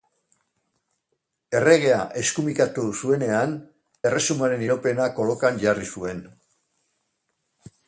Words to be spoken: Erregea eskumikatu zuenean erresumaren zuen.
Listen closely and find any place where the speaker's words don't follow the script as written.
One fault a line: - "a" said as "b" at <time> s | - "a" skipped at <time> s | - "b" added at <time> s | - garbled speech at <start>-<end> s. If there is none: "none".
- "iraupena kolokan jarri" added at 4.7 s